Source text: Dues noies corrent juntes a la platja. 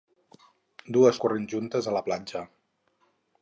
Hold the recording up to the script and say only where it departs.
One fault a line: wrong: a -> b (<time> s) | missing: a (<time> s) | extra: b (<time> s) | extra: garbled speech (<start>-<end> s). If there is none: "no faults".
missing: noies (1.2 s)